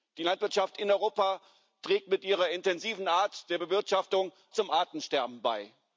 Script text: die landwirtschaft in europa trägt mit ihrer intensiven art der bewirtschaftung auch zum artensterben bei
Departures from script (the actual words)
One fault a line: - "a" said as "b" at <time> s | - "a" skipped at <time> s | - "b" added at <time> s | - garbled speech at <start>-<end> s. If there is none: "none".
- "auch" skipped at 4.3 s